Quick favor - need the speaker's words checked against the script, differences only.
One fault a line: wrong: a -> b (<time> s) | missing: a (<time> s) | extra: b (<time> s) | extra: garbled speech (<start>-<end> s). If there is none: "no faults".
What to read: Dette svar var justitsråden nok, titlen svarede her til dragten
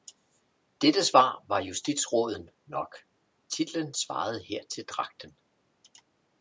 no faults